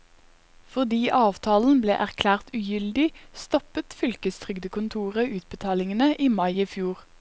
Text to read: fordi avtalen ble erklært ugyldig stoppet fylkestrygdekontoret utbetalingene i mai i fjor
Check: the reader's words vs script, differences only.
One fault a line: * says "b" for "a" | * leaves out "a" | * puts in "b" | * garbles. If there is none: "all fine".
all fine